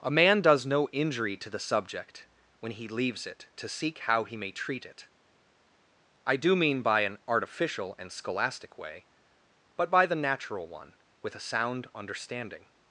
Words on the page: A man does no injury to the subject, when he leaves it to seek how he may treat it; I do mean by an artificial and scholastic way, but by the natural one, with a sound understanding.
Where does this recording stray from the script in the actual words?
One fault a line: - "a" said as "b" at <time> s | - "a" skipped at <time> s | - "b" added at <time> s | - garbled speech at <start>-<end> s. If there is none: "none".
none